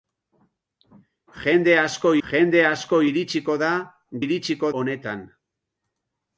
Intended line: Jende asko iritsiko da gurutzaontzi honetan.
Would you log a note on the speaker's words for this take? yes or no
yes